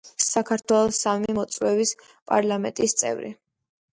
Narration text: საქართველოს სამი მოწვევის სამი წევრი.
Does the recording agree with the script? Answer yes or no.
no